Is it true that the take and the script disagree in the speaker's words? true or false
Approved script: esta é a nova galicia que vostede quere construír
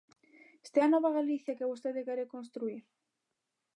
false